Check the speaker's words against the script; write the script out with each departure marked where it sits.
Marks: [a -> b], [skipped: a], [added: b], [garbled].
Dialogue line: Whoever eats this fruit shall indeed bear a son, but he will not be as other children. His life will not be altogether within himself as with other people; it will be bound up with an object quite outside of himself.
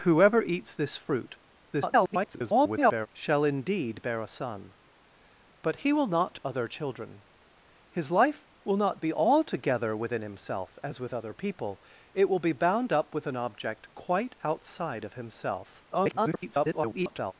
Whoever eats this fruit [garbled] shall indeed bear a son, but he will not [skipped: be as] other children. His life will not be altogether within himself as with other people; it will be bound up with an object quite outside of himself. [garbled]